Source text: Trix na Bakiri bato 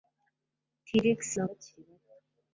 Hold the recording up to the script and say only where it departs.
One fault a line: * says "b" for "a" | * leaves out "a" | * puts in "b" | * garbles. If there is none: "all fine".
all fine